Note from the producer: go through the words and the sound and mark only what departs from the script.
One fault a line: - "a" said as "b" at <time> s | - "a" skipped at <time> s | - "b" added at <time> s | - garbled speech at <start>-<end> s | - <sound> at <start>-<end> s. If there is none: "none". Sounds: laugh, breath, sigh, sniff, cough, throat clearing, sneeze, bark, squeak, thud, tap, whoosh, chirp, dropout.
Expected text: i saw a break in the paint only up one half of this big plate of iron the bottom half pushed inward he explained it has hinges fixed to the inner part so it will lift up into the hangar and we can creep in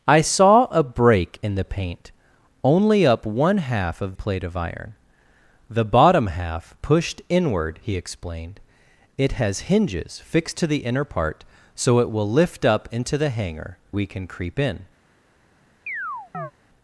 - "this big" skipped at 4.2 s
- "and" skipped at 13.8 s
- chirp at 15.9-16.5 s